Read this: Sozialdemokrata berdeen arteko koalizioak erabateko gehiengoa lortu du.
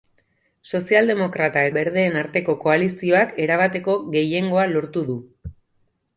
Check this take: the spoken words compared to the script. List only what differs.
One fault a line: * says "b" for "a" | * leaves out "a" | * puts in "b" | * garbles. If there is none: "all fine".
all fine